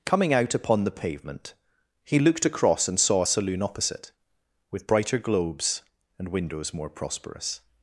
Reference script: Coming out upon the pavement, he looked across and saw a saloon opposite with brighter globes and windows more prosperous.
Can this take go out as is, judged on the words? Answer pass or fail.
pass